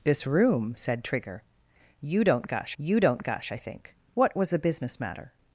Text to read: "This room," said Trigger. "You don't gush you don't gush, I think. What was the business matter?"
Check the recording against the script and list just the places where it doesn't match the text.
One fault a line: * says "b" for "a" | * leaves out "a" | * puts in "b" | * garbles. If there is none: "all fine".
all fine